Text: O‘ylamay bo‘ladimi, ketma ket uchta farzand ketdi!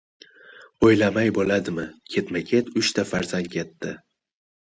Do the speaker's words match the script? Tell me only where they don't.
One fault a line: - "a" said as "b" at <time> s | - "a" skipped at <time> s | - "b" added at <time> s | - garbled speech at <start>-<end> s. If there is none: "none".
none